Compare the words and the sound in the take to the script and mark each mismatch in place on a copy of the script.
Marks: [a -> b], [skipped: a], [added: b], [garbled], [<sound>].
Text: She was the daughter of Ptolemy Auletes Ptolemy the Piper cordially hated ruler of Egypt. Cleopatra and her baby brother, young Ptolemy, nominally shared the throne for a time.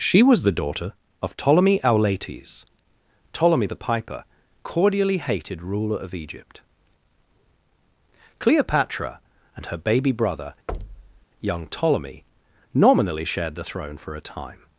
She was the daughter of Ptolemy Auletes Ptolemy the Piper cordially hated ruler of Egypt. Cleopatra and her baby brother, [thud] young Ptolemy, nominally shared the throne for a time.